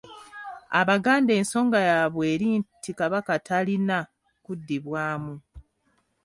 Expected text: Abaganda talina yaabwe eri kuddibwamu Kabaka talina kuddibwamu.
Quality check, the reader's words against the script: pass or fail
fail